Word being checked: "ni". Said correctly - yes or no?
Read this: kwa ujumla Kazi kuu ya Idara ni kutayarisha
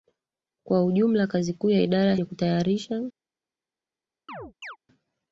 yes